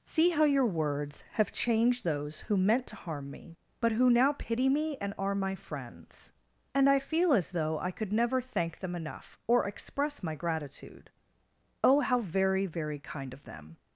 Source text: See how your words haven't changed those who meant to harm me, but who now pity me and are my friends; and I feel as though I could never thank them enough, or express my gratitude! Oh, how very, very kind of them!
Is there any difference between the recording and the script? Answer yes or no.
yes